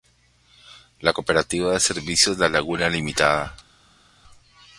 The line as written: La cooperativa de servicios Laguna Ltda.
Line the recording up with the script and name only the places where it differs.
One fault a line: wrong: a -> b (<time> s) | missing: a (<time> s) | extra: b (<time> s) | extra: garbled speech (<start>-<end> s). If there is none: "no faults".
extra: La (2.4 s)